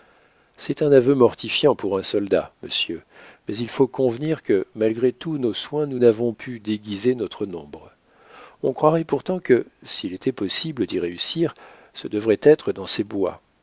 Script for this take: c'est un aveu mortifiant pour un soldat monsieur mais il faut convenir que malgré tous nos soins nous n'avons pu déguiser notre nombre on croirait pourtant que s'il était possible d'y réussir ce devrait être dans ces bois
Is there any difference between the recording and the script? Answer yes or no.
no